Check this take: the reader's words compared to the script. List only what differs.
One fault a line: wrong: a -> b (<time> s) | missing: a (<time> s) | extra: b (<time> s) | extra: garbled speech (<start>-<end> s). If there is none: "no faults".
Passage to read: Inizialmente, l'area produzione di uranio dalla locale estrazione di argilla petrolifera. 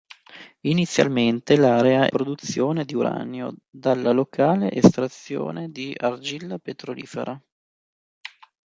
no faults